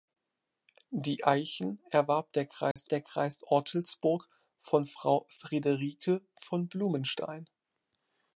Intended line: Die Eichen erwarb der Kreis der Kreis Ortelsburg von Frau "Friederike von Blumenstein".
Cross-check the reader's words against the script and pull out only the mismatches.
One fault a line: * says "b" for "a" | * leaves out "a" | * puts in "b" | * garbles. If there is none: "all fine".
all fine